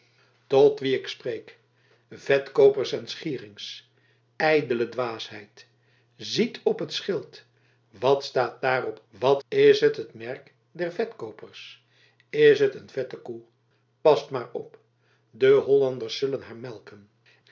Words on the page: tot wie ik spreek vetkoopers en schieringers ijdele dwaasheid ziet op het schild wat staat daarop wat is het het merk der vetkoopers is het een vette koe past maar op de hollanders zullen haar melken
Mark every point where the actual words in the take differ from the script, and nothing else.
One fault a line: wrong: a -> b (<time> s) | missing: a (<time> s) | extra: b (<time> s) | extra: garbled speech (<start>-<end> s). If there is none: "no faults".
no faults